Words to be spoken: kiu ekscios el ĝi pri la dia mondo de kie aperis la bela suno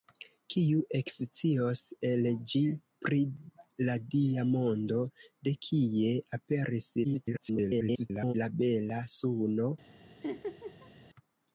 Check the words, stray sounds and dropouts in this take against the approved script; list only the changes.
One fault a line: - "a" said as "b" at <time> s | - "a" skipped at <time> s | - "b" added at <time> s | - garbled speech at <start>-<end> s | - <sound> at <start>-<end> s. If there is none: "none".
- garbled speech at 7.0-8.3 s
- laugh at 10.2-10.9 s